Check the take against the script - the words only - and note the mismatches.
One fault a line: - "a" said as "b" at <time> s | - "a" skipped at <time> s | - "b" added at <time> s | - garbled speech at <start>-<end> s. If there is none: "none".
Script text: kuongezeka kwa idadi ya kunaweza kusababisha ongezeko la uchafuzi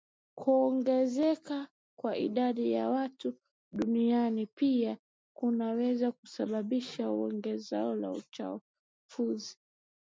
- "watu duniani pia" added at 2.9 s